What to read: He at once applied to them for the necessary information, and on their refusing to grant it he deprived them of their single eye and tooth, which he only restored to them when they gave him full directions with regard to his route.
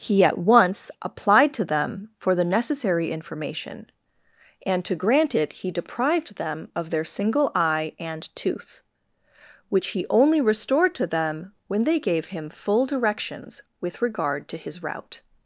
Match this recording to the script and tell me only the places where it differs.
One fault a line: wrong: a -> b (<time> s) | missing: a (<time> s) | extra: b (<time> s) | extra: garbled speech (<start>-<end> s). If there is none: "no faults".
missing: on their refusing (4.8 s)